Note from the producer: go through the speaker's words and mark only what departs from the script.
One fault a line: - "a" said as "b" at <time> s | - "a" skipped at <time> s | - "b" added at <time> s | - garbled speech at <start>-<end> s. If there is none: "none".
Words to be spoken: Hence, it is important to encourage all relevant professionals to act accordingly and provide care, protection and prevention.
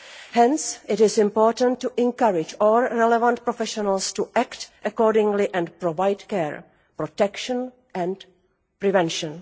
none